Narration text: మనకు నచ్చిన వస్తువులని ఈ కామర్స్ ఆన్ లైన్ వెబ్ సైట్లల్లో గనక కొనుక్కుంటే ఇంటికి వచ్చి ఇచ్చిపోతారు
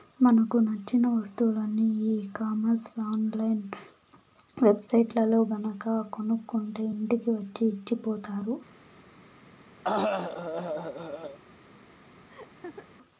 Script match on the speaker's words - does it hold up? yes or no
yes